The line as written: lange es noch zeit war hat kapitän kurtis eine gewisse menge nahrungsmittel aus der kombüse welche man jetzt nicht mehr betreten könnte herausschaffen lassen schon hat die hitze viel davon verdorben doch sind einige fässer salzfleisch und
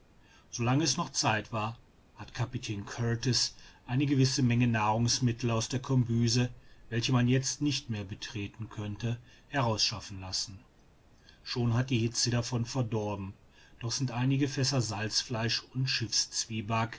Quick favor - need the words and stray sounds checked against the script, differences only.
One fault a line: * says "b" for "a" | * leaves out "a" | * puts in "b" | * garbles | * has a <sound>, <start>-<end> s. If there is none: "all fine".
* leaves out "viel"